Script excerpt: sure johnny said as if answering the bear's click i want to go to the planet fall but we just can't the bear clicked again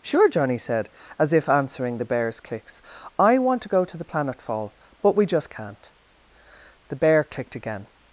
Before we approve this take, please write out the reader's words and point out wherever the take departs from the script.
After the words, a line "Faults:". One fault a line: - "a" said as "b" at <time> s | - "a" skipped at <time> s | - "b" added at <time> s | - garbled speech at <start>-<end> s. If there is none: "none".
sure johnny said as if answering the bear's clicks i want to go to the planet fall but we just can't the bear clicked again
Faults:
- "click" said as "clicks" at 2.4 s